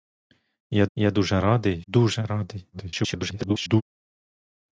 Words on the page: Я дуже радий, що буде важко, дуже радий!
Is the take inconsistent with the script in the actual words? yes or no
yes